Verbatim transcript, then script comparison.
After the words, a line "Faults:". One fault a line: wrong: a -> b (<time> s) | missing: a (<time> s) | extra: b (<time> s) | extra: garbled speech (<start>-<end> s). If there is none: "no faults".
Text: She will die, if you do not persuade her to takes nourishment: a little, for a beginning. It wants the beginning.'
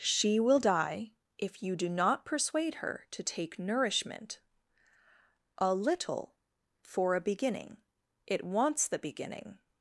She will die, if you do not persuade her to take nourishment: a little, for a beginning. It wants the beginning.'
Faults:
wrong: takes -> take (3.2 s)